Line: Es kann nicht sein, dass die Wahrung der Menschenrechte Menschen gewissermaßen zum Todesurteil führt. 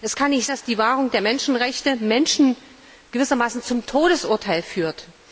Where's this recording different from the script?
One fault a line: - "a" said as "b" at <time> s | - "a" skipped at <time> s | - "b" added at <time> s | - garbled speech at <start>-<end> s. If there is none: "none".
- "sein" skipped at 0.5 s